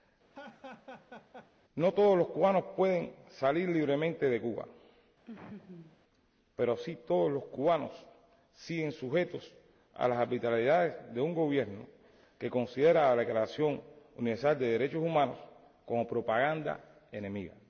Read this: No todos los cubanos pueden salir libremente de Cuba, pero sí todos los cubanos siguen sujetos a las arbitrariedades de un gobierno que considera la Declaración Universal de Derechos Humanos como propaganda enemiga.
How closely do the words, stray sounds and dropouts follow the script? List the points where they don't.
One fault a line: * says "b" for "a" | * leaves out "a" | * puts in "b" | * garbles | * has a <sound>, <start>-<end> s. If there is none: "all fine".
* has a laugh, 0.3-1.5 s
* has a laugh, 5.3-6.0 s